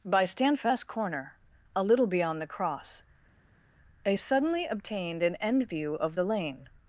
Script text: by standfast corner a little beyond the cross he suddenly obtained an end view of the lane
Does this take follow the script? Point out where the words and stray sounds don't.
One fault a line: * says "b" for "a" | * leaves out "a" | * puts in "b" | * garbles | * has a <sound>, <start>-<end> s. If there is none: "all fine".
* says "they" for "he"